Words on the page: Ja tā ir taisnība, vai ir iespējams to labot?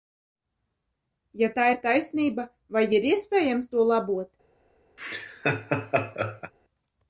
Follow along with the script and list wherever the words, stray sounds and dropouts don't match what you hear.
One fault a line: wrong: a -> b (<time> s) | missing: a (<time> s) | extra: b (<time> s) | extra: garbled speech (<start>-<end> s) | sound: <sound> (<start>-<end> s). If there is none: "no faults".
sound: laugh (5.0-6.5 s)